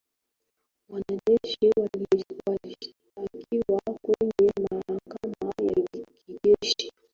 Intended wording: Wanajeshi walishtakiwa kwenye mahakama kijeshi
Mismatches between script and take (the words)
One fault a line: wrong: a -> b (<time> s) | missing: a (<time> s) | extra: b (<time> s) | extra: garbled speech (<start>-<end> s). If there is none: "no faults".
extra: ya (5.6 s)